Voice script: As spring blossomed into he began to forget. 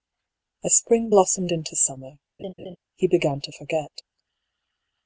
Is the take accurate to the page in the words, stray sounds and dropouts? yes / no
no